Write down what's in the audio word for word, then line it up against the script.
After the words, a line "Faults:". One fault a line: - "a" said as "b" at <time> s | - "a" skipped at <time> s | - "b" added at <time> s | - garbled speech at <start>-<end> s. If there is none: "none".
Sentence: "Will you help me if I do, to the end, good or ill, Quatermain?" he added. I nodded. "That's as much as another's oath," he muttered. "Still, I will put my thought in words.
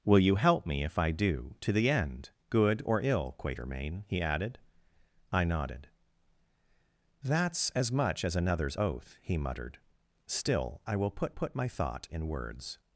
"Will you help me if I do, to the end, good or ill, Quatermain?" he added. I nodded. "That's as much as another's oath," he muttered. "Still, I will put put my thought in words.
Faults:
- "put" added at 11.3 s